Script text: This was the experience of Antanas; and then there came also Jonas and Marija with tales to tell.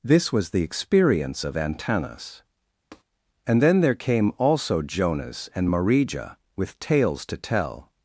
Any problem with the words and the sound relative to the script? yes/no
yes